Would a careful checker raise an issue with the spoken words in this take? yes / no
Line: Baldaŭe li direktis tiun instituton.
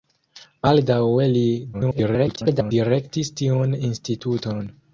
yes